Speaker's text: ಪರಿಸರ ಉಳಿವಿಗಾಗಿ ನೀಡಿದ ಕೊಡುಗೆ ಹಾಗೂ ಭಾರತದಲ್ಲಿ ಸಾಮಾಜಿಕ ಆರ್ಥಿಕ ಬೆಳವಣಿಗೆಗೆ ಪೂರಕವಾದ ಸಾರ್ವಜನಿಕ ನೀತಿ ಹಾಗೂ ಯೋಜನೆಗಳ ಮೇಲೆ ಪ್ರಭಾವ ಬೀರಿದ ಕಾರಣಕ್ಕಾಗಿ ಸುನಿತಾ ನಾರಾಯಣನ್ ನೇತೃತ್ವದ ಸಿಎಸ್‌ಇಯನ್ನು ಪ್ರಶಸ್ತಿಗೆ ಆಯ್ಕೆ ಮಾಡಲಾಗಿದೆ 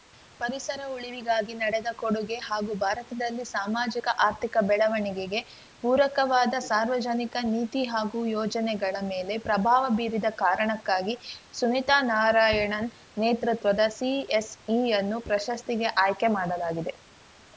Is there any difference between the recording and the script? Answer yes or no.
no